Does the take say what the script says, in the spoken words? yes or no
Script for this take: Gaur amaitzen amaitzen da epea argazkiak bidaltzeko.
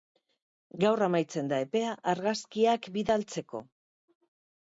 no